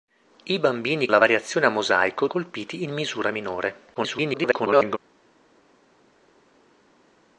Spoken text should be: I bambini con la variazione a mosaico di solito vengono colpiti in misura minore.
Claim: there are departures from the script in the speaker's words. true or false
true